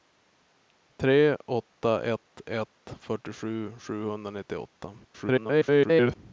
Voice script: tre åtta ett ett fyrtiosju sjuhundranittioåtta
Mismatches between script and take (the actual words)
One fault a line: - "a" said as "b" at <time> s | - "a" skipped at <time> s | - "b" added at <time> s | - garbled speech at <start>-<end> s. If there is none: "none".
- garbled speech at 5.0-6.2 s